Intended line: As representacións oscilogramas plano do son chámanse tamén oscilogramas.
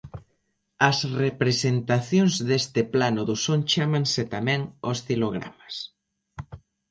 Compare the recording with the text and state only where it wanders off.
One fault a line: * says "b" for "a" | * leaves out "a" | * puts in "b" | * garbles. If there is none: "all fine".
* says "deste" for "oscilogramas"